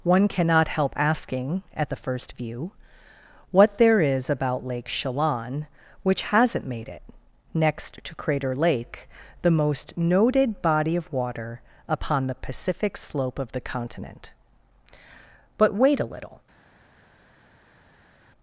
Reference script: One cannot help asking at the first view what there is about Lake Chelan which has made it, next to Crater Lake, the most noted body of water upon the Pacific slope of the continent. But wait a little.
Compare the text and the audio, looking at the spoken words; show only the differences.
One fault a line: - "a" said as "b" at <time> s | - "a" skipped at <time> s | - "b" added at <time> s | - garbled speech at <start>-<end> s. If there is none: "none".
- "has" said as "hasn't" at 6.2 s